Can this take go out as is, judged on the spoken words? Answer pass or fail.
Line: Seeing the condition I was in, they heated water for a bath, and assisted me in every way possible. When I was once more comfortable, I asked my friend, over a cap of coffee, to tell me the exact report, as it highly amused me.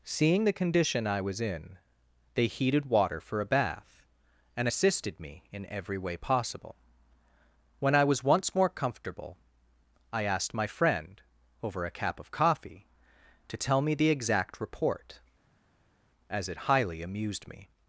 pass